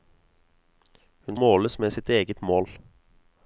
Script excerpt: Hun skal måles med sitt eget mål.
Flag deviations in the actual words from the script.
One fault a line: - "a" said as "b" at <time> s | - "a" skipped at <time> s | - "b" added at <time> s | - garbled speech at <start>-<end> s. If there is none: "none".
- "skal" skipped at 1.4 s